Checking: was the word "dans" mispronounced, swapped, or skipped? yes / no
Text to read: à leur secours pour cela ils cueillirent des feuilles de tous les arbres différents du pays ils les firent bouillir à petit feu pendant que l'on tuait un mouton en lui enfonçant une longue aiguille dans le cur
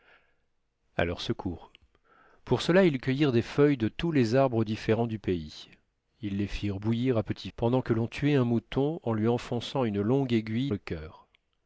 yes